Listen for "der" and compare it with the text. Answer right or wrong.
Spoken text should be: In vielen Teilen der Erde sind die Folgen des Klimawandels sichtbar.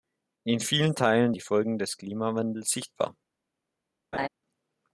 wrong